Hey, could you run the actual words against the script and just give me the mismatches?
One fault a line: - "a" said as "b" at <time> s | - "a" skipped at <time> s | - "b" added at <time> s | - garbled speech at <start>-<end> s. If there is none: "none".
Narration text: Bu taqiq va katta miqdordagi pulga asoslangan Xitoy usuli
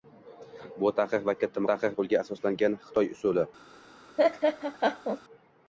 - "miqdordagi" said as "taqiq" at 1.7 s